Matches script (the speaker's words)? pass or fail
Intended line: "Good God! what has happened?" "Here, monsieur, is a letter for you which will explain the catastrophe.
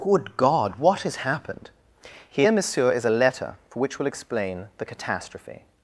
fail